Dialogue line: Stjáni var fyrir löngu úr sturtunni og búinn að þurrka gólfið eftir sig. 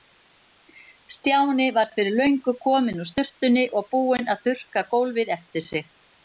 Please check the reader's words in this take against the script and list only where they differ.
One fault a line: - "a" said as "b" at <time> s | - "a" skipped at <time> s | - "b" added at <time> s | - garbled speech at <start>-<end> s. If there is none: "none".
- "kominn" added at 2.6 s